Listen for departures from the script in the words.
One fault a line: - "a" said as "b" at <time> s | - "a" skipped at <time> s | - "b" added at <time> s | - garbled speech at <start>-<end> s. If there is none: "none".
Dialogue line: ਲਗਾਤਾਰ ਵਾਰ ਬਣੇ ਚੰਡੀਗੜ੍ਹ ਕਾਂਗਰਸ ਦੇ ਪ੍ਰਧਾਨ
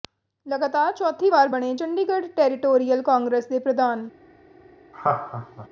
- "ਚੌਥੀ" added at 0.9 s
- "ਟੈਰੀਟੋਰੀਅਲ" added at 2.4 s